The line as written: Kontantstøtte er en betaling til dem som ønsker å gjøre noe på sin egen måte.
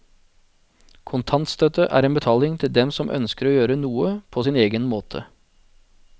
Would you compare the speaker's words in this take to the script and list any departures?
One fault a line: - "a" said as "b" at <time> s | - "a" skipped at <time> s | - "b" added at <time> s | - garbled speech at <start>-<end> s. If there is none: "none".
none